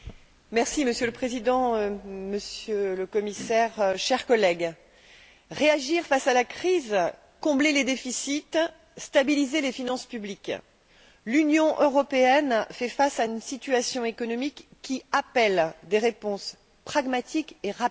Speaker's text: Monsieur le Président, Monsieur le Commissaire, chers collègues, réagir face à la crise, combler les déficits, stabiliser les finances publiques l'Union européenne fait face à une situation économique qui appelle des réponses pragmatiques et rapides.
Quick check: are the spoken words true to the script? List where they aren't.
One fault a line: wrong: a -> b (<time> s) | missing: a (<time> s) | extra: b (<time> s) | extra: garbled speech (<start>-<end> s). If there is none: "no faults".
no faults